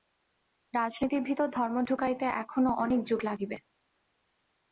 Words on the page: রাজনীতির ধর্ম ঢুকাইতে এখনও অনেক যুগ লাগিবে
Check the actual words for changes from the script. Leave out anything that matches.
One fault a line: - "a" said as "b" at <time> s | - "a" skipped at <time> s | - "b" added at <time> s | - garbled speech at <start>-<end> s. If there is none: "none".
- "ভিতর" added at 1.2 s